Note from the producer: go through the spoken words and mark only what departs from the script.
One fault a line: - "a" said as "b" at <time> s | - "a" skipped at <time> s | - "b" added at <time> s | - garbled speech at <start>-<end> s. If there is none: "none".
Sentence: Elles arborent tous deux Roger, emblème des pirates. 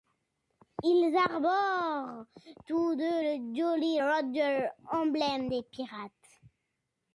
- "Elles" said as "Ils" at 0.8 s
- "le Jolly" added at 3.2 s